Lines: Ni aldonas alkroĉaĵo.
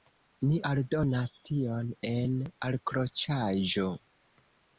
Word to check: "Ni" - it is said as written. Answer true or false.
true